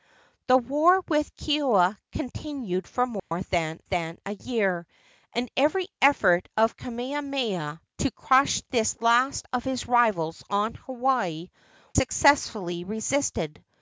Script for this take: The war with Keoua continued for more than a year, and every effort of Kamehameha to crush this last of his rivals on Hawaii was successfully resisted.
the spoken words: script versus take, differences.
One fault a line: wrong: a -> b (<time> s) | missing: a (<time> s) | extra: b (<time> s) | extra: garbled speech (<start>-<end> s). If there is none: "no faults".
extra: than (3.8 s)
missing: was (11.5 s)